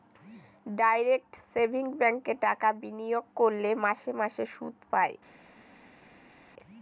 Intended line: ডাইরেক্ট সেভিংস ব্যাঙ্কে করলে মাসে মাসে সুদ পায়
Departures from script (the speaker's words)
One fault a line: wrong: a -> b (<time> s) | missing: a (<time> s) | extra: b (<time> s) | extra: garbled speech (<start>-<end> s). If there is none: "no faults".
extra: টাকা বিনিয়োগ (2.5 s)